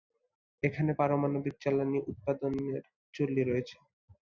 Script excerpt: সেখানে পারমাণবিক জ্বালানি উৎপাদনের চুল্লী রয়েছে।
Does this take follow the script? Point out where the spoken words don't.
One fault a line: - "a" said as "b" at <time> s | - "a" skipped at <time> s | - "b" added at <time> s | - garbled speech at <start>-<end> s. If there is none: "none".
- "সেখানে" said as "এখানে" at 0.6 s